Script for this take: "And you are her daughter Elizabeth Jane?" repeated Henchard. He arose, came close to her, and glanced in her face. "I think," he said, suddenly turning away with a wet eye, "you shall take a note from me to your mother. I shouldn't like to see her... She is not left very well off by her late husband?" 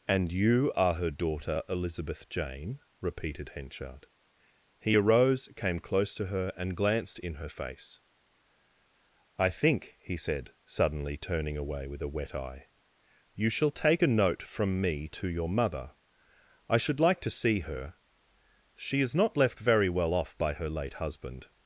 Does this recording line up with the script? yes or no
no